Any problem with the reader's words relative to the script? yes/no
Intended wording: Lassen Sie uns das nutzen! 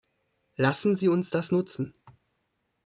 no